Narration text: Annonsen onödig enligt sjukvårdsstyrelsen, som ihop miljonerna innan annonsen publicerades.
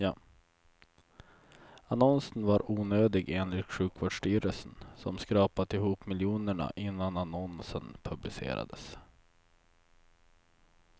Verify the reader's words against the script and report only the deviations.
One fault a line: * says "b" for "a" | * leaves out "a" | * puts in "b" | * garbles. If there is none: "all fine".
* puts in "var"
* puts in "skrapat"